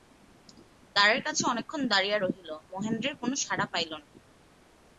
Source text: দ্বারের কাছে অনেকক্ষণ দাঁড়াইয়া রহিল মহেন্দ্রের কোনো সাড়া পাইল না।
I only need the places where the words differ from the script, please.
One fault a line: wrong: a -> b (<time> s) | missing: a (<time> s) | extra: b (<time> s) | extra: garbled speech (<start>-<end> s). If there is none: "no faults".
no faults